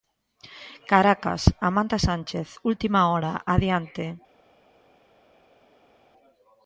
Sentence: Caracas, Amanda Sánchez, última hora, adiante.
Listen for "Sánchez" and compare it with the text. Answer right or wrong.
right